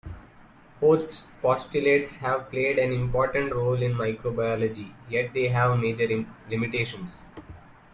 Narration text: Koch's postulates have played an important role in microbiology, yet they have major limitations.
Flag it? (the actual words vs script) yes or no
no